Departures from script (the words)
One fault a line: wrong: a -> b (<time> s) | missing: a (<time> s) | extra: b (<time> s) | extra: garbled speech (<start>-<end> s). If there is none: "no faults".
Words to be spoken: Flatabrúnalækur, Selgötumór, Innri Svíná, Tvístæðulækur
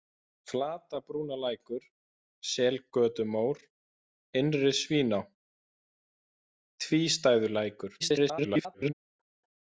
extra: garbled speech (8.0-8.9 s)